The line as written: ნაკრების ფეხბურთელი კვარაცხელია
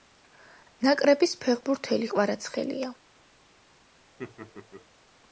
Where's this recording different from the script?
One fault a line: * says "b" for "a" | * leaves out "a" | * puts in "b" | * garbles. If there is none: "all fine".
all fine